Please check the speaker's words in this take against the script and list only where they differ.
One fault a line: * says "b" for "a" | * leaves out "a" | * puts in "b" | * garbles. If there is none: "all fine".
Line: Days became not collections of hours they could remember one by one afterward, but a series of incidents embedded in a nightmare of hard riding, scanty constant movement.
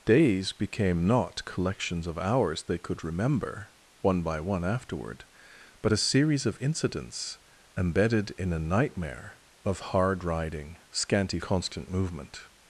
all fine